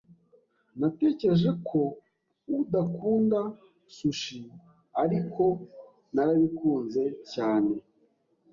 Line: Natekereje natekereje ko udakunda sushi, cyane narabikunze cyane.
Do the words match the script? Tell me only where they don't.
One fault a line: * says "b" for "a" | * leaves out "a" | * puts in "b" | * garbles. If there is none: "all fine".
* leaves out "natekereje"
* says "ariko" for "cyane"